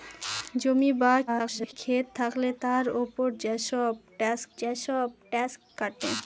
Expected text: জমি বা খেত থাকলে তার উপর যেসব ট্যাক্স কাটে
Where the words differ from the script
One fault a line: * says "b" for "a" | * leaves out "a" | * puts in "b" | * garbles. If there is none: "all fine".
* garbles
* puts in "যেসব ট্যাক্স"